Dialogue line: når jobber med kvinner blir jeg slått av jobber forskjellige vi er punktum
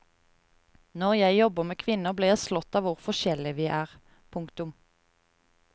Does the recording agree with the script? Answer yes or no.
no